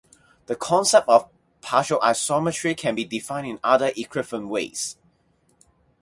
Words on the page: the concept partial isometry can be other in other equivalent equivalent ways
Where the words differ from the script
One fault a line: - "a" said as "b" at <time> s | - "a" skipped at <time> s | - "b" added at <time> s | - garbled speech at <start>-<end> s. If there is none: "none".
- "of" added at 1.1 s
- "other" said as "defined" at 3.0 s
- "equivalent" skipped at 4.5 s